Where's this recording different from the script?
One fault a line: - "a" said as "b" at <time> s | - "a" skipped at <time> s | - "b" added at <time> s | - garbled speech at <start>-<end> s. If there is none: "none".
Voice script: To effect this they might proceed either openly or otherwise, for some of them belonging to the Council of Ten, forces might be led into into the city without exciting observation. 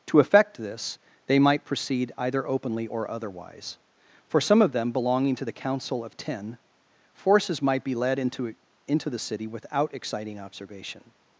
none